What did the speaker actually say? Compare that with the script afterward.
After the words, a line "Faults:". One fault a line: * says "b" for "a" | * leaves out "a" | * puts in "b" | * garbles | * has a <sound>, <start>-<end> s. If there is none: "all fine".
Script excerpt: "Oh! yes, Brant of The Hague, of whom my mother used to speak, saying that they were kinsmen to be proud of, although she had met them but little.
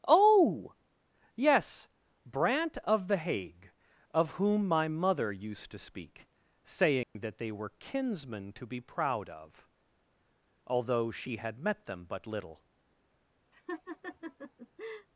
"Oh! yes, Brant of The Hague, of whom my mother used to speak, saying that they were kinsmen to be proud of, although she had met them but little.
Faults:
* has a dropout, 7.0-7.2 s
* has a laugh, 13.5-15.1 s